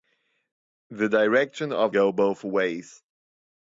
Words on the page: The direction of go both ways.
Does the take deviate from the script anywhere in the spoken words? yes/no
no